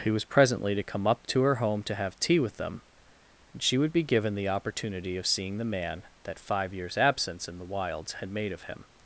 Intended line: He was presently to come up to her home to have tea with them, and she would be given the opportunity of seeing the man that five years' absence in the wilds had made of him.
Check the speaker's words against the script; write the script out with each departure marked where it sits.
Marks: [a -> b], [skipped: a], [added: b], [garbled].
He was presently to come up to her home to have tea with them, and she would be given the opportunity of seeing the man that five years' absence in the wilds had made of him.